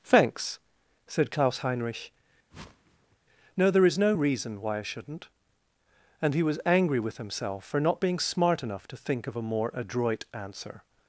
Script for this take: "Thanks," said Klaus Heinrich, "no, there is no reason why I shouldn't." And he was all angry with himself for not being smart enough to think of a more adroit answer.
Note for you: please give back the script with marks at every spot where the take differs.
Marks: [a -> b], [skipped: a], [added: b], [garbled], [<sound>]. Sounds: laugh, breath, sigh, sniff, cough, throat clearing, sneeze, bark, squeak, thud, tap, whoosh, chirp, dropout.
"Thanks," said Klaus Heinrich, [whoosh] "no, there is no reason why I shouldn't." And he was [skipped: all] angry with himself for not being smart enough to think of a more adroit answer.